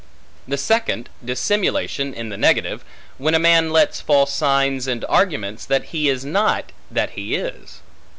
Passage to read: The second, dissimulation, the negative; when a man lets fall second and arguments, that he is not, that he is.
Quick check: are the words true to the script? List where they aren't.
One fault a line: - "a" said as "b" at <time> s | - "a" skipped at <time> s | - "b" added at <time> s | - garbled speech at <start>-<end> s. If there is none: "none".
- "in" added at 2.1 s
- "second" said as "signs" at 4.2 s